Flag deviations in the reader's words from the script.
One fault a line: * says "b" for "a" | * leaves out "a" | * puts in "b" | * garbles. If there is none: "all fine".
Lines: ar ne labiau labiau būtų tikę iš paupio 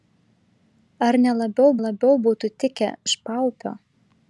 all fine